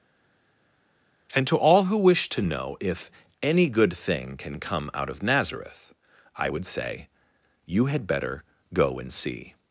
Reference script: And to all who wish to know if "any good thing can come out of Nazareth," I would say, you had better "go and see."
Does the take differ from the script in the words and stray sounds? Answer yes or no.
no